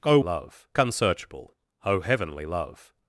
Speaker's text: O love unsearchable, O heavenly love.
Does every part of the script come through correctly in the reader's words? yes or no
yes